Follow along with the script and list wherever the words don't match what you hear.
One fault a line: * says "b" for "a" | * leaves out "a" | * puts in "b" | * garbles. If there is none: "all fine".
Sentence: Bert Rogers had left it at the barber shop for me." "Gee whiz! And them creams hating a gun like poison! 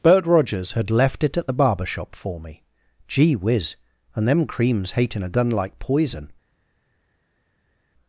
all fine